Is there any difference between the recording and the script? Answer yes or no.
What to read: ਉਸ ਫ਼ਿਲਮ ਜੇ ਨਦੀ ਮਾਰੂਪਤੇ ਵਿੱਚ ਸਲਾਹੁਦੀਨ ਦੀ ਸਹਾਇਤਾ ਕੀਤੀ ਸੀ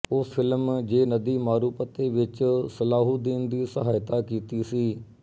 no